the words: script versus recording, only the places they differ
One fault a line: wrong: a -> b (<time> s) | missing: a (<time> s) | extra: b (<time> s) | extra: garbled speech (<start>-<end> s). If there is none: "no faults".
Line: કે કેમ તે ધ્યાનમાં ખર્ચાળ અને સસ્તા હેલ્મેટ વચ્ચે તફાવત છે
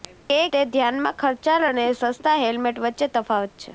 missing: કેમ (0.4 s)